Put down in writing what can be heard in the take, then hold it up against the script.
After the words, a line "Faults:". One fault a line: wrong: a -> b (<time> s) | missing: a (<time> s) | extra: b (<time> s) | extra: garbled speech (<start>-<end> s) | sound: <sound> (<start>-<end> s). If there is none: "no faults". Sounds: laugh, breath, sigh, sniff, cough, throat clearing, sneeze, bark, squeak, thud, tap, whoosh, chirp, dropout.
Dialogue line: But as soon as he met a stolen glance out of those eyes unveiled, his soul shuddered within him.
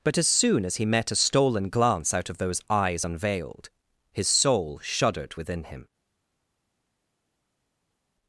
But as soon as he met a stolen glance out of those eyes unveiled, his soul shuddered within him.
Faults:
no faults